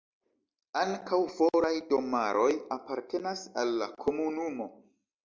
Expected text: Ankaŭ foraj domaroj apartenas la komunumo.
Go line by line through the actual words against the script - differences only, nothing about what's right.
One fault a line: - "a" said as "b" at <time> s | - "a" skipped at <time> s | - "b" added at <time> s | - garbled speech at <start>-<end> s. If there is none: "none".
- "al" added at 3.6 s